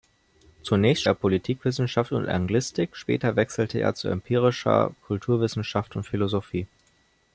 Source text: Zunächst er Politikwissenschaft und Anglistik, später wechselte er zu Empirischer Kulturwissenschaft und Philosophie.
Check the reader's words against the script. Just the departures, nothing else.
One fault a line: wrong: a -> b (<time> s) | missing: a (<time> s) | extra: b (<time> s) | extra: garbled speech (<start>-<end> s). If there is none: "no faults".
no faults